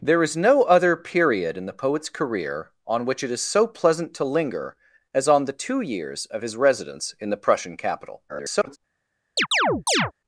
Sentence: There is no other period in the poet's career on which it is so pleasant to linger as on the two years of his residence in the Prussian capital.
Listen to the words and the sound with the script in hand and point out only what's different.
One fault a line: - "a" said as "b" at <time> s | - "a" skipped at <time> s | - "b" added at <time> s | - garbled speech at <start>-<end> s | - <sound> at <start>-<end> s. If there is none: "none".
- garbled speech at 8.3-8.8 s
- chirp at 9.4-10.1 s